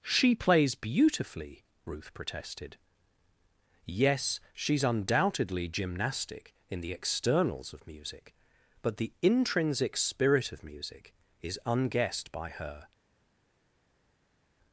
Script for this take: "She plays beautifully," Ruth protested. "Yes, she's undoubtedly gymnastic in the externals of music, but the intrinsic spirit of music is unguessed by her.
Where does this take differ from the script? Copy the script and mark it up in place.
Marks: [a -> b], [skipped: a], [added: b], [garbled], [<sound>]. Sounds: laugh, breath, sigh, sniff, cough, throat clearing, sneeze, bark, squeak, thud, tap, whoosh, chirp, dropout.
"She plays beautifully," Ruth protested. "Yes, she's undoubtedly gymnastic in the externals of music, but the intrinsic spirit of music is unguessed by her.